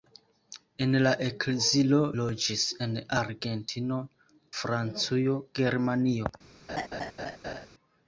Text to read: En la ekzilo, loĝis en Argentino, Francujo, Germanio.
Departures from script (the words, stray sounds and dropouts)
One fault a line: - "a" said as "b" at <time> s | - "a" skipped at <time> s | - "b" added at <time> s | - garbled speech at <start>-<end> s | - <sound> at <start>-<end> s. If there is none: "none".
- laugh at 6.7-7.7 s